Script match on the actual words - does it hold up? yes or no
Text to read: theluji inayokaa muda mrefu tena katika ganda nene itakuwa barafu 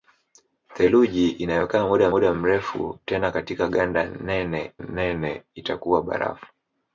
no